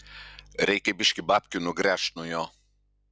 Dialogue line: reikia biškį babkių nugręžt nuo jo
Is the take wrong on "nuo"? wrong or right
right